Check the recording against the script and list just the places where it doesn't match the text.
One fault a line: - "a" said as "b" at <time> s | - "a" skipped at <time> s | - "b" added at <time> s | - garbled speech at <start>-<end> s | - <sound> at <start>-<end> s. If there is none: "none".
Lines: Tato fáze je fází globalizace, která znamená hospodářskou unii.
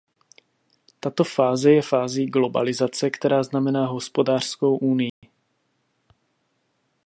- dropout at 5.1-5.2 s